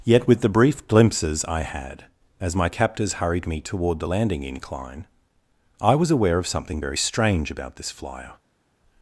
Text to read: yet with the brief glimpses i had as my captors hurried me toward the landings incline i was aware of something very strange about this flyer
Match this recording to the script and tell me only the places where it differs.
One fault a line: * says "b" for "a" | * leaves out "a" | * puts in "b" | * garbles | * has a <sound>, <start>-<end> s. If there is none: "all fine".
* says "landing" for "landings"